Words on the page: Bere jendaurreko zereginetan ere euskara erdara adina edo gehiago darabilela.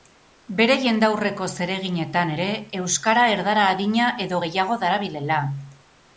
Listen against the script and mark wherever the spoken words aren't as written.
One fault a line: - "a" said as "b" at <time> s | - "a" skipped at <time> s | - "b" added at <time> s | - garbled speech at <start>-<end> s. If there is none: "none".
none